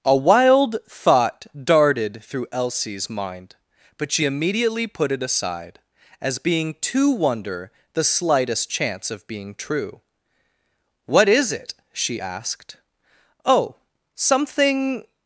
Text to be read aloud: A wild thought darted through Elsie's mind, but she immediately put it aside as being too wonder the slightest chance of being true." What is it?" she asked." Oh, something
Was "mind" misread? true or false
false